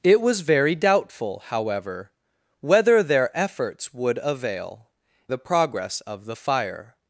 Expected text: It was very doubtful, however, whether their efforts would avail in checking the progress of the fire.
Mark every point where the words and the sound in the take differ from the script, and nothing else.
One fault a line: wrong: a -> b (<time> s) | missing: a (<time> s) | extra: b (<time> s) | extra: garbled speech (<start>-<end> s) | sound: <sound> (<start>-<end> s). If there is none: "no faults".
missing: in checking (4.9 s)